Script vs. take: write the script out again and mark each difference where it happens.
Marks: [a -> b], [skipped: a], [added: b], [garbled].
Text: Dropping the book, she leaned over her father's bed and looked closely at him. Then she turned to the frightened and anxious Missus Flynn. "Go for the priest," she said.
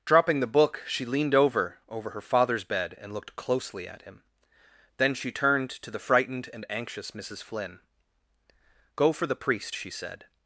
Dropping the book, she leaned over [added: over] her father's bed and looked closely at him. Then she turned to the frightened and anxious Missus Flynn. "Go for the priest," she said.